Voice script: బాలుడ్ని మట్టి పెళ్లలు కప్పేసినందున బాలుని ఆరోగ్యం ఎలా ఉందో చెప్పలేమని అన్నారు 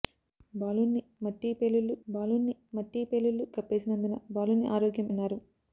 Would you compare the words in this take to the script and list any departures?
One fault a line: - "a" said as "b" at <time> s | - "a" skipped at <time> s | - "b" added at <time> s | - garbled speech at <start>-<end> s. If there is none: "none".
- "బాలుడ్ని మట్టి పెళ్లలు" added at 2.1 s
- "ఎలా ఉందో చెప్పలేమని" skipped at 5.1 s